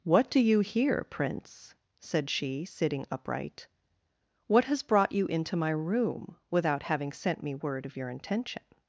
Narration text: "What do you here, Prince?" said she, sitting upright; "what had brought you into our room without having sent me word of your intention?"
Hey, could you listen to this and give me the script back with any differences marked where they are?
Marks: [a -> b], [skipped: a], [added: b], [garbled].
"What do you here, Prince?" said she, sitting upright; "what [had -> has] brought you into [our -> my] room without having sent me word of your intention?"